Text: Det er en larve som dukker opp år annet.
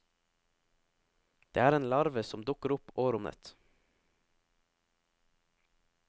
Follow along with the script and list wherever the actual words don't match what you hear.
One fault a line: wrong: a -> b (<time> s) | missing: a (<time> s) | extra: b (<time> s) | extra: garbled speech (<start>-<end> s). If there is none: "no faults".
no faults